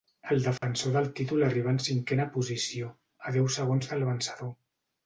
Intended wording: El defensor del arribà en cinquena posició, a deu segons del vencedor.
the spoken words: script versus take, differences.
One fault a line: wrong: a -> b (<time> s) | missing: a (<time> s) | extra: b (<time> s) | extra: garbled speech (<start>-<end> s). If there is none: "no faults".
extra: títol (1.2 s)